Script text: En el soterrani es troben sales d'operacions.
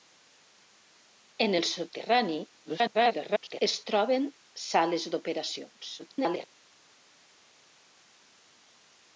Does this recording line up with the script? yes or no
no